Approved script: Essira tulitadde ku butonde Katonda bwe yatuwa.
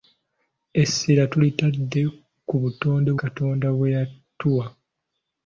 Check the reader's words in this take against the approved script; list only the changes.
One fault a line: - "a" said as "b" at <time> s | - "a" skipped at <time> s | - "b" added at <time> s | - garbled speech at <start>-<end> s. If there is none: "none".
none